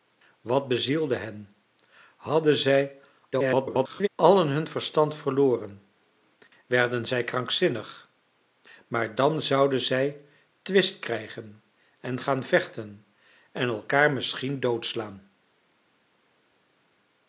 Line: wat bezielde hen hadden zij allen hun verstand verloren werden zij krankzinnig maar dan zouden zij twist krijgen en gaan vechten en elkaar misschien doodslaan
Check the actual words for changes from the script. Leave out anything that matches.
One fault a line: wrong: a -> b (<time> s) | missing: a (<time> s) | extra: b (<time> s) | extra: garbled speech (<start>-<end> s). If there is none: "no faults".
extra: garbled speech (3.3-4.1 s)